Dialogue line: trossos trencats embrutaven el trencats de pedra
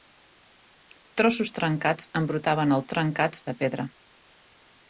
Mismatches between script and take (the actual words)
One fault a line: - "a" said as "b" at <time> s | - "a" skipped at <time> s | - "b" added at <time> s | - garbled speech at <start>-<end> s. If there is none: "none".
none